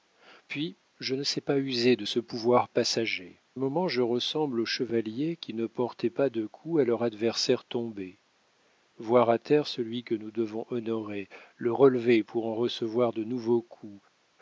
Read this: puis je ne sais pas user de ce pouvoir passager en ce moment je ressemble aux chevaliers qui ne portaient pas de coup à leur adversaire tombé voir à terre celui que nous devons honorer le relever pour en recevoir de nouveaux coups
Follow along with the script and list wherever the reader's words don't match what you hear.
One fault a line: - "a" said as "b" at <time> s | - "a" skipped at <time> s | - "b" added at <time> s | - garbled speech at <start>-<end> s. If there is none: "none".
- "en ce" skipped at 3.4 s